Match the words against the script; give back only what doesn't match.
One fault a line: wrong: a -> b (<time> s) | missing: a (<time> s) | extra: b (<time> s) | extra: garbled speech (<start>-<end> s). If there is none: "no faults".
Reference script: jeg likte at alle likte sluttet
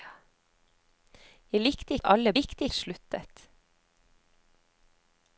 no faults